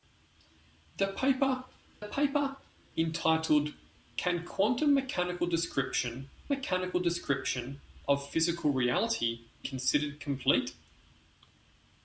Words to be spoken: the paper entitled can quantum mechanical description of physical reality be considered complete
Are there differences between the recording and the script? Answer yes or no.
yes